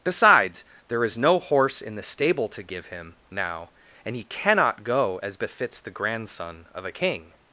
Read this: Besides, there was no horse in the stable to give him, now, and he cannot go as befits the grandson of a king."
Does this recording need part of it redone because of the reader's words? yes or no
yes